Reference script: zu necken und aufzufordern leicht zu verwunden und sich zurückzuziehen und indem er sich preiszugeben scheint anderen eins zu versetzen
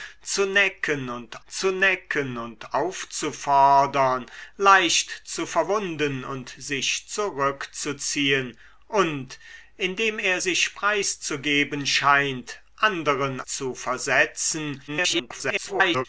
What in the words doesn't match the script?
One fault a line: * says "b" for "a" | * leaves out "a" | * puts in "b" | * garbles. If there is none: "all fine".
* puts in "zu necken und"
* leaves out "eins"
* garbles